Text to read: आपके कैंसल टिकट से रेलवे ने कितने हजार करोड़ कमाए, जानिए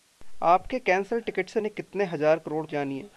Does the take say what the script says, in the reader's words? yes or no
no